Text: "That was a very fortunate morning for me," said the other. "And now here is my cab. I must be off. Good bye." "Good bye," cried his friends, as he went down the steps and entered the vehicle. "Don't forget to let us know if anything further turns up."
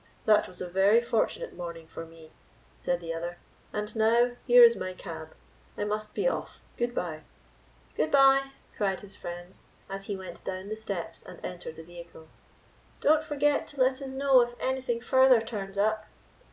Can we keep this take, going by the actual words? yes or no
yes